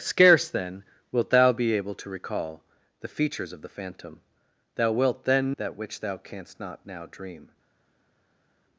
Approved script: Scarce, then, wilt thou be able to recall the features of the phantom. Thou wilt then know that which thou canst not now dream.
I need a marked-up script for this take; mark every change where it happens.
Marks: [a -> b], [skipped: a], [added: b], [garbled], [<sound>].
Scarce, then, wilt thou be able to recall the features of the phantom. Thou wilt then [skipped: know] that which thou canst not now dream.